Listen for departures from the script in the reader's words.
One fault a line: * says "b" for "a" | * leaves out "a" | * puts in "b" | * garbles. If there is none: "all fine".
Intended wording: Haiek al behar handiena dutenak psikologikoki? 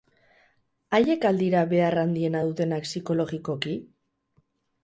* puts in "dira"